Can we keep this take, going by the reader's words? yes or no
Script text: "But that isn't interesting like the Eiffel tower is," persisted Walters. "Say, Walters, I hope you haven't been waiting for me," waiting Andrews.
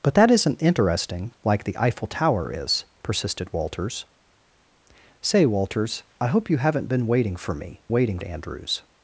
yes